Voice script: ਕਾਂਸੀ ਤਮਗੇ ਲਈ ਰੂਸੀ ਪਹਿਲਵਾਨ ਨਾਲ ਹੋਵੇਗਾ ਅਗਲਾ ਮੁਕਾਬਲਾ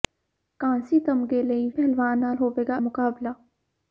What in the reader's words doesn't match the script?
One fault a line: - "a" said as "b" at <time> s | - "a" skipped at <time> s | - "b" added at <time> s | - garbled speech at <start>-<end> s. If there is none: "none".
- "ਰੂਸੀ" skipped at 1.7 s
- "ਅਗਲਾ" skipped at 2.8 s